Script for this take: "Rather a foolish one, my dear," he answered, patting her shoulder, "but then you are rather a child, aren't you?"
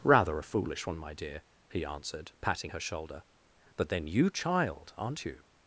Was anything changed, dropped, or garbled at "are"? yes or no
yes